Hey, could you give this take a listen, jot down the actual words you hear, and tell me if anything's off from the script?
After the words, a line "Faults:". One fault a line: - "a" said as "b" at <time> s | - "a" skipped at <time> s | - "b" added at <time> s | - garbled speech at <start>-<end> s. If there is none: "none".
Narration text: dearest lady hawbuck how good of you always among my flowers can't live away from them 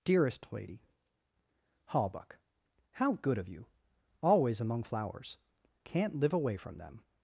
dearest lady hawbuck how good of you always among flowers can't live away from them
Faults:
- "my" skipped at 4.8 s